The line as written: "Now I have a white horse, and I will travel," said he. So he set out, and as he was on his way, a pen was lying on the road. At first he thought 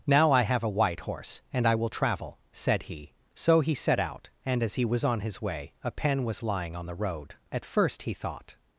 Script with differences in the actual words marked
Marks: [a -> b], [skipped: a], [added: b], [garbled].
"Now I have a white horse, and I will travel," said he. So he set out, and as he was on his way, a pen was lying on the road. At first he thought